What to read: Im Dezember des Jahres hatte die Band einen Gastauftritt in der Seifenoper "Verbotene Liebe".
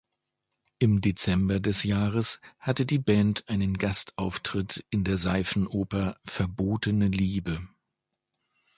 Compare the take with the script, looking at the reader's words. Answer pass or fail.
pass